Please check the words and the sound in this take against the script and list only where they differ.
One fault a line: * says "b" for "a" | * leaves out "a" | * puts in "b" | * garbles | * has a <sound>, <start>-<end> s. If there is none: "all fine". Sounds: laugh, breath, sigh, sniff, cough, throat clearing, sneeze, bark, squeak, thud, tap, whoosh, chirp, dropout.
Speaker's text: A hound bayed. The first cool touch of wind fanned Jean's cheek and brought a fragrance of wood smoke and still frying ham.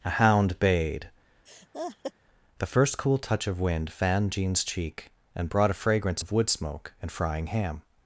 * has a laugh, 1.5-2.1 s
* leaves out "still"